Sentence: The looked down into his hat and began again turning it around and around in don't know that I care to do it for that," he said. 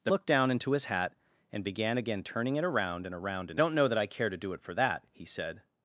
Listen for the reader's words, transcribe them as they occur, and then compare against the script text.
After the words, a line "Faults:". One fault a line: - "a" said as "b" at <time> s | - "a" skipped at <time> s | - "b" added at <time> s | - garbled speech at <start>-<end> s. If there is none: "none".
The looked down into his hat and began again turning it around and around in don't know that I care to do it for that," he said.
Faults:
none